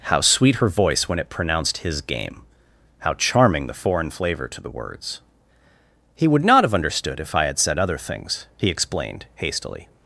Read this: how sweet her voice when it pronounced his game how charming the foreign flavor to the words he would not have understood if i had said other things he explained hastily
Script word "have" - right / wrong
right